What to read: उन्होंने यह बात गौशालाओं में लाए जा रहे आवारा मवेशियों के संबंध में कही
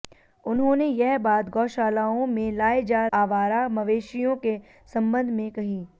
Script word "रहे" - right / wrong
wrong